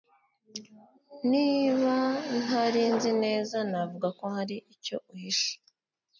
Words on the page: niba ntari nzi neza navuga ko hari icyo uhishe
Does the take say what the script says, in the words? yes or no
yes